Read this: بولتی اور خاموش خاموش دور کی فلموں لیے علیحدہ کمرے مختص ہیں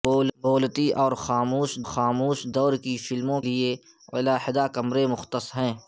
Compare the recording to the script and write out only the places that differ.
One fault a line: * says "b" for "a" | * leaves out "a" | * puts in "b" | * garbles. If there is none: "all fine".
all fine